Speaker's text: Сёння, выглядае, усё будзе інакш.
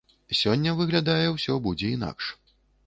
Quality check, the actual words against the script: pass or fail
pass